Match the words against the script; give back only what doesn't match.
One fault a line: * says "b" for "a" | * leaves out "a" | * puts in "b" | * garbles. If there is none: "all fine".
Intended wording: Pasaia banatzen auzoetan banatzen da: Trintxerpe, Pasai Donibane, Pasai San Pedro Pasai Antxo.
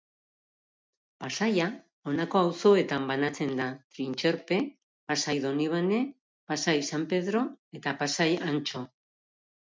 * says "honako" for "banatzen"
* puts in "eta"